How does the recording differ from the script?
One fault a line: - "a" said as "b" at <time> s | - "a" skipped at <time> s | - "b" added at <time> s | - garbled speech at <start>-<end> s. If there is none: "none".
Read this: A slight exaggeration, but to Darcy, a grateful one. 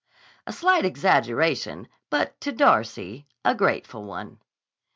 none